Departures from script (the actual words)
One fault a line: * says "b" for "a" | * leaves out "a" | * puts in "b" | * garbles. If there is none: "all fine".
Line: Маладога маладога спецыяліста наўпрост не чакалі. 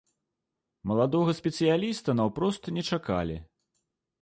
* leaves out "маладога"